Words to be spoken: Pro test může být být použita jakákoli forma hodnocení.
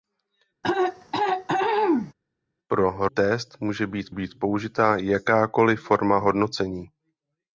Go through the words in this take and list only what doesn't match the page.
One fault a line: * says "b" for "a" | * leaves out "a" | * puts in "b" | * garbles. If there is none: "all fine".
all fine